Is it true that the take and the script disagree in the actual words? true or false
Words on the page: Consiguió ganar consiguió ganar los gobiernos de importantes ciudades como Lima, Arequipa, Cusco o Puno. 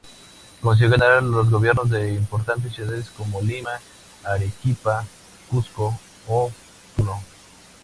true